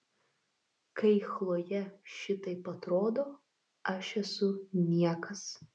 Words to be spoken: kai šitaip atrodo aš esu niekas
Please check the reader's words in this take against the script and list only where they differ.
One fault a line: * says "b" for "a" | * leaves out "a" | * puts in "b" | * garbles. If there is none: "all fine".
* puts in "chlojė"